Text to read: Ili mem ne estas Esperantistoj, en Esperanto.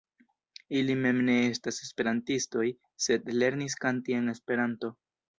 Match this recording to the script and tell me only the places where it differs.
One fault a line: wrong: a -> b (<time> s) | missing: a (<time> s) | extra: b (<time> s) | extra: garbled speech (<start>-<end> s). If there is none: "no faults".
extra: sed lernis kanti (3.1 s)